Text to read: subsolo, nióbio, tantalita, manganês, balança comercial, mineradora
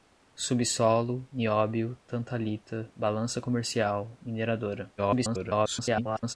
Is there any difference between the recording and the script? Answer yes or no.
yes